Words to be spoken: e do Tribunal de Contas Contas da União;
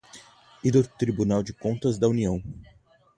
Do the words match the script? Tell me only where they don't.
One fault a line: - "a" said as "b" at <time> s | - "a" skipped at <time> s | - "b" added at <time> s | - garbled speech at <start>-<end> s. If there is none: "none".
- "Contas" skipped at 2.0 s